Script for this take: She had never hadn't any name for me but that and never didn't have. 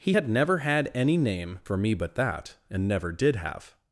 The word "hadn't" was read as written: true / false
false